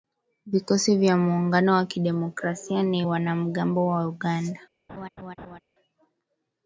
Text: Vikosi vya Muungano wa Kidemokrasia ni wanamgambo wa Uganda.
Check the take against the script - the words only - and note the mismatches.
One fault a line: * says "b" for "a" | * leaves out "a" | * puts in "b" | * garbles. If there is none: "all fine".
all fine